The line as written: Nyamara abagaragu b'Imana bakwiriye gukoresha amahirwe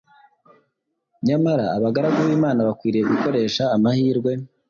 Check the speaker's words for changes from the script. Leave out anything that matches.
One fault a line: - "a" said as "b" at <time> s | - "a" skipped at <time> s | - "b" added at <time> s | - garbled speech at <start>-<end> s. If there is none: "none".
none